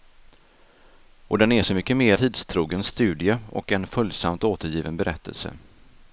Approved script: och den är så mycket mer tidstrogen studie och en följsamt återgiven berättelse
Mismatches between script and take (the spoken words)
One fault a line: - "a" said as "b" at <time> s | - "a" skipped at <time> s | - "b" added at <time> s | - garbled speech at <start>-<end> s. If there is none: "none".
none